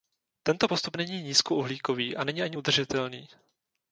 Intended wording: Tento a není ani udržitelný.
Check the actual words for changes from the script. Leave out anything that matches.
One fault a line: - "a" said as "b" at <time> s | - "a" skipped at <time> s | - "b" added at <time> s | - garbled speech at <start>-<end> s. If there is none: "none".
- "postup není nízkouhlíkový" added at 0.6 s